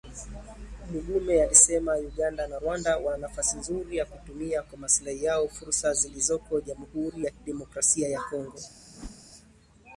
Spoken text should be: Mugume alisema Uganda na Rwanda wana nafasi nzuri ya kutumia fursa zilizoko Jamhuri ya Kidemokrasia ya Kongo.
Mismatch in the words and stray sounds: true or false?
true